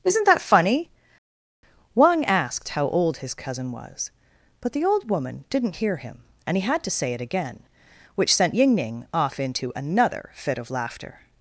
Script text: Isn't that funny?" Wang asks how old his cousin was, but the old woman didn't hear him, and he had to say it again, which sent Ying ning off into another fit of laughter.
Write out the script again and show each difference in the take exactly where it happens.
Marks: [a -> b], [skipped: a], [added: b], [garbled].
Isn't that funny?" Wang [asks -> asked] how old his cousin was, but the old woman didn't hear him, and he had to say it again, which sent Ying ning off into another fit of laughter.